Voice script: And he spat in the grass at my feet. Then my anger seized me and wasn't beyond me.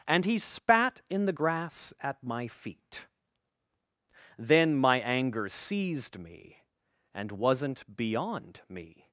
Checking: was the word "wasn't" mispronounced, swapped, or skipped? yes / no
no